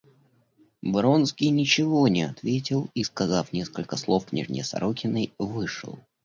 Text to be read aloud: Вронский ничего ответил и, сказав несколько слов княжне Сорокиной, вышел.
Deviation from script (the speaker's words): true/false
true